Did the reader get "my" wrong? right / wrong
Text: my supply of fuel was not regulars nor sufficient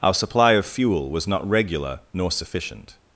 wrong